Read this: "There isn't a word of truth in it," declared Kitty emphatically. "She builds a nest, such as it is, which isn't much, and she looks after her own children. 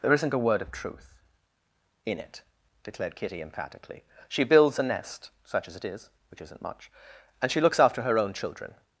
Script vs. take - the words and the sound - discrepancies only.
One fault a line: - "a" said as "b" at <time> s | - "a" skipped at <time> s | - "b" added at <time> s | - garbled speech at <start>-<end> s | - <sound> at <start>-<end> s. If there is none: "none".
none